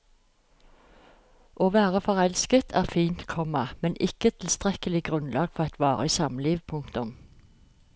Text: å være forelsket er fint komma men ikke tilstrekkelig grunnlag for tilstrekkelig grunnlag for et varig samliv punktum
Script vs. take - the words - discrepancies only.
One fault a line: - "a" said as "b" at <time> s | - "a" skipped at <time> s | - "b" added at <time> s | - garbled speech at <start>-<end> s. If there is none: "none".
- "tilstrekkelig grunnlag for" skipped at 5.7 s